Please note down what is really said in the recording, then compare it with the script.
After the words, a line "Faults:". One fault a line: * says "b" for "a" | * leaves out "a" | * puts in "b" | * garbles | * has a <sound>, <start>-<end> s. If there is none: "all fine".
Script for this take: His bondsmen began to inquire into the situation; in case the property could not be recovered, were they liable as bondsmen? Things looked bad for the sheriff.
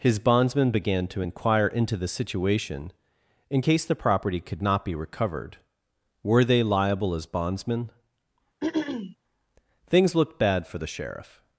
His bondsmen began to inquire into the situation; in case the property could not be recovered, were they liable as bondsmen? Things looked bad for the sheriff.
Faults:
* has a throat clearing, 8.6-9.2 s